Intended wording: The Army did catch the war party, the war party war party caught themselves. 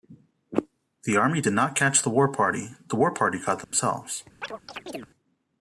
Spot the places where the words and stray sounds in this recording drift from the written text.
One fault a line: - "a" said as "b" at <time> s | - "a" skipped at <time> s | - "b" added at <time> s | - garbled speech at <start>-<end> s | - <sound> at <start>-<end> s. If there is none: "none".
- "not" added at 1.5 s
- "war party" skipped at 3.4 s
- dropout at 3.6-3.7 s
- chirp at 4.4-5.1 s